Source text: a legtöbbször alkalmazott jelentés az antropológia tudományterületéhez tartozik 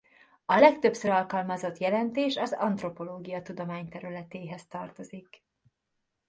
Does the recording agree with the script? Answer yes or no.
yes